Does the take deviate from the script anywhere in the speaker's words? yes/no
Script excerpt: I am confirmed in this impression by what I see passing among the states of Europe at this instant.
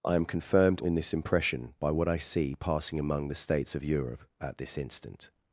no